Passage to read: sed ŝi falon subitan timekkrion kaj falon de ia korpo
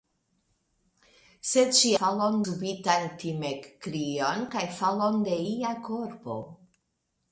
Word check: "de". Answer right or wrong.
right